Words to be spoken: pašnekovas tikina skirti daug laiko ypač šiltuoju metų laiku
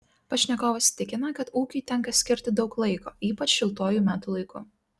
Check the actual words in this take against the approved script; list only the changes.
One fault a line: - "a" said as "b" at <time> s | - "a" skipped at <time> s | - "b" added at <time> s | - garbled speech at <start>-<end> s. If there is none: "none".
- "kad ūkiui tenka" added at 1.4 s